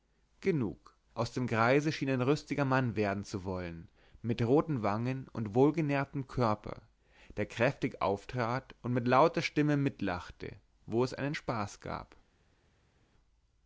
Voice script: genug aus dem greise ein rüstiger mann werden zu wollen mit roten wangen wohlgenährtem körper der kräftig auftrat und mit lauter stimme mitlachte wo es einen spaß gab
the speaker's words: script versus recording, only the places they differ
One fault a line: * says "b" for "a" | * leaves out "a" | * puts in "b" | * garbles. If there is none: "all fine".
* puts in "schien"
* puts in "und"